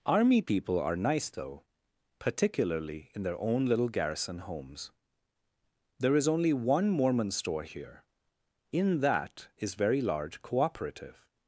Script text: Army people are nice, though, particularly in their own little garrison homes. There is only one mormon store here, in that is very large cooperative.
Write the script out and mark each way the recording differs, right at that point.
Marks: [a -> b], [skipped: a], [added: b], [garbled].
Army people are nice, though, particularly in their own little garrison homes. There is only one mormon store here, in that is very large cooperative.